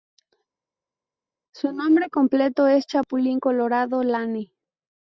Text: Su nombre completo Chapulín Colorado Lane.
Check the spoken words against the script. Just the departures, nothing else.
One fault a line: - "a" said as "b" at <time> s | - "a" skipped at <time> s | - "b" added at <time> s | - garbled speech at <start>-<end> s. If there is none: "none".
- "es" added at 2.7 s